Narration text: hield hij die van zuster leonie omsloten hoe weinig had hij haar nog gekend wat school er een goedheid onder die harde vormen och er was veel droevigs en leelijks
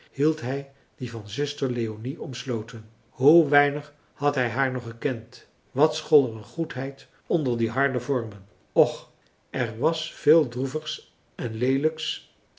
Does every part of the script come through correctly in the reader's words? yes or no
yes